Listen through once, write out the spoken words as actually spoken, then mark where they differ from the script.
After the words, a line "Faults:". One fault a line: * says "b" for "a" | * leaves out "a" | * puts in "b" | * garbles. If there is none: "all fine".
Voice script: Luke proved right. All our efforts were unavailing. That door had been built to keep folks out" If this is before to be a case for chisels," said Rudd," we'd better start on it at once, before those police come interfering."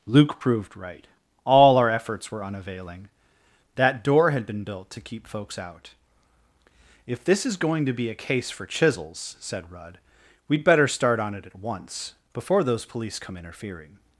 Luke proved right. All our efforts were unavailing. That door had been built to keep folks out" If this is going to be a case for chisels," said Rudd," we'd better start on it at once, before those police come interfering."
Faults:
* says "going" for "before"